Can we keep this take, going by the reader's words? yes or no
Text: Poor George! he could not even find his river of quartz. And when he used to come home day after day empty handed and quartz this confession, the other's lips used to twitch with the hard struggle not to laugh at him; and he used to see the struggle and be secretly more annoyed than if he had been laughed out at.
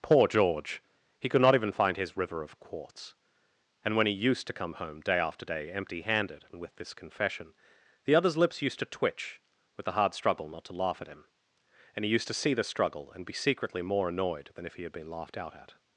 no